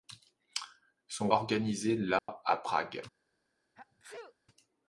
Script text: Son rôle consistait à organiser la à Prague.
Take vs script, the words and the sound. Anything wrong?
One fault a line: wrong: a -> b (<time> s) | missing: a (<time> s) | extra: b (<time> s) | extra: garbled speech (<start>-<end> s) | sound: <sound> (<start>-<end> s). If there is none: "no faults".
missing: rôle consistait à (1.3 s)
sound: dropout (2.2-2.3 s)
sound: sneeze (3.7-4.3 s)